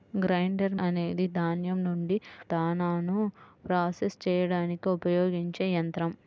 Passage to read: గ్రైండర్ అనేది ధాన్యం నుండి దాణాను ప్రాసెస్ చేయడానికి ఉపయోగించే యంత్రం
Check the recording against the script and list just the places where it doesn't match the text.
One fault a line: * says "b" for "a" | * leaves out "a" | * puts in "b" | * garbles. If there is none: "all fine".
all fine